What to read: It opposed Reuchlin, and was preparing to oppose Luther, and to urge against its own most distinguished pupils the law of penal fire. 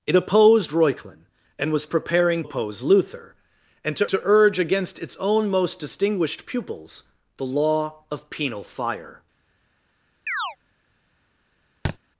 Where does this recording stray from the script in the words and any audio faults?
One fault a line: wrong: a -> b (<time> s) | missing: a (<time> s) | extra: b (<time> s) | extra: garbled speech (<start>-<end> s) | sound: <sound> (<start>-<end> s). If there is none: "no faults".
missing: to (2.4 s)
extra: to (4.1 s)
sound: chirp (10.3-10.6 s)
sound: thud (11.8-12.0 s)